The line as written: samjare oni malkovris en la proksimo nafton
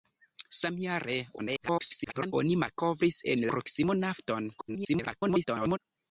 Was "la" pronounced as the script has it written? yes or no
no